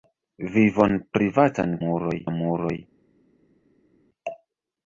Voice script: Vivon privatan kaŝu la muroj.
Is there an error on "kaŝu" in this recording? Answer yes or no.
yes